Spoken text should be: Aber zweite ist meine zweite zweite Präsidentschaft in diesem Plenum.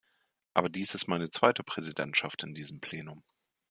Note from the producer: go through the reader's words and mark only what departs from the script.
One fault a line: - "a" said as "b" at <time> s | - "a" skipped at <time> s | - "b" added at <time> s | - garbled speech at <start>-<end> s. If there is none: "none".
- "zweite" said as "dies" at 0.7 s
- "zweite" skipped at 1.6 s